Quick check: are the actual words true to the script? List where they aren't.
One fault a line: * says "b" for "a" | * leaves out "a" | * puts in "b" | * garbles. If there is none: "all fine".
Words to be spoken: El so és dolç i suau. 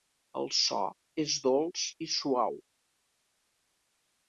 all fine